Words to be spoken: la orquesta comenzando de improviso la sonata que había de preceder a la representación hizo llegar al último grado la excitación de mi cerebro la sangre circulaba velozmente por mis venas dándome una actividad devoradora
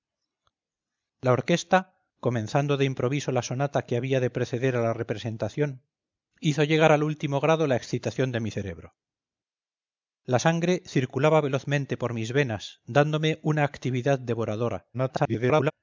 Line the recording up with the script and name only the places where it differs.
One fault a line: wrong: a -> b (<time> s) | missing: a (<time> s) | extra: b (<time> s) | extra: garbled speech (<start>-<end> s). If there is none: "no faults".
extra: garbled speech (14.9-15.7 s)